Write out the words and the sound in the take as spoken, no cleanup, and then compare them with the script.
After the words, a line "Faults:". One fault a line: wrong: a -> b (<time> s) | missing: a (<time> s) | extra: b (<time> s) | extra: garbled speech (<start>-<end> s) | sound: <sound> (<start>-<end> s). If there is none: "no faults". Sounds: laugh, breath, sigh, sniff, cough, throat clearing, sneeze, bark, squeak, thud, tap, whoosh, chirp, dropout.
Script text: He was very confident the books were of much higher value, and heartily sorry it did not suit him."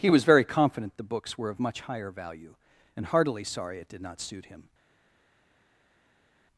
He was very confident the books were of much higher value, and heartily sorry it did not suit him."
Faults:
no faults